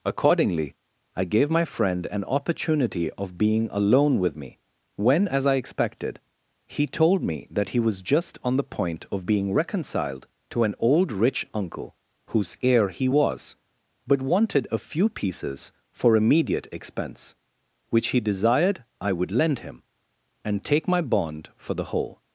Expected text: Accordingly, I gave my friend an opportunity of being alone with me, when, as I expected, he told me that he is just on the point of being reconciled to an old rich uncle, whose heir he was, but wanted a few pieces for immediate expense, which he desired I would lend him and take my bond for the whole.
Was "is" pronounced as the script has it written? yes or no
no